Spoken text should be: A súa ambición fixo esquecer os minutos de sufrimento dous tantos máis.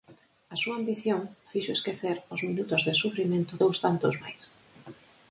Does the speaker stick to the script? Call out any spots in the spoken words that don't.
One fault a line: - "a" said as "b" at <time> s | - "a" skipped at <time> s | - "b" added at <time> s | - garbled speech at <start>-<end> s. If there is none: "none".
none